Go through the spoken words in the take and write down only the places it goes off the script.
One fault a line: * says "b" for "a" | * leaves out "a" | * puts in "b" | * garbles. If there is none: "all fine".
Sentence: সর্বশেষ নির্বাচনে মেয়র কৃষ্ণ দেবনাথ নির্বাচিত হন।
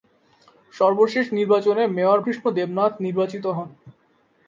all fine